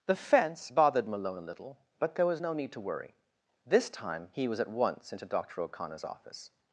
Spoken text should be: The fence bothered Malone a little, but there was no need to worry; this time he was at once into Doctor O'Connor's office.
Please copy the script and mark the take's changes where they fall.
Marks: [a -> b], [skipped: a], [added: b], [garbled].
The fence bothered Malone a little, but there was no need to worry; this time he was at once into Doctor O'Connor's office.